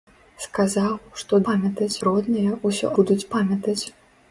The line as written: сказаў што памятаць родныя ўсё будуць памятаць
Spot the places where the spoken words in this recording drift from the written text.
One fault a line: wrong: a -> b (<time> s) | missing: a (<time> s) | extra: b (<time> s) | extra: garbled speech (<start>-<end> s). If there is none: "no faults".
no faults